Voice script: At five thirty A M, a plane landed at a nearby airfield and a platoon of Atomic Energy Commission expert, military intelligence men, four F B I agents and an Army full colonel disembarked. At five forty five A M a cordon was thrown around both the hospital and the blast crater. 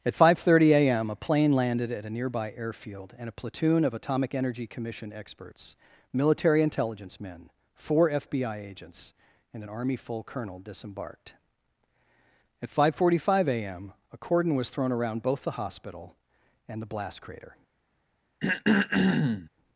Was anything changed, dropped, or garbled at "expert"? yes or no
yes